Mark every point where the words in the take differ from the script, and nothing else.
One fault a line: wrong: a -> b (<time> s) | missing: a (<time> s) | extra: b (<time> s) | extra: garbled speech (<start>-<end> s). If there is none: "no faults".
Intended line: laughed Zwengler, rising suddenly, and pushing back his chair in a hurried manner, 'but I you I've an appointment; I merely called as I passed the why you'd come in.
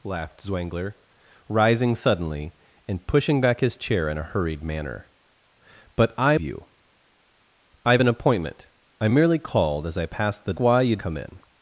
no faults